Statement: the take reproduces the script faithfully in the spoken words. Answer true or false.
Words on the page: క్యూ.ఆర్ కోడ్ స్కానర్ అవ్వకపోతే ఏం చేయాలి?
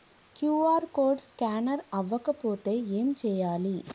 true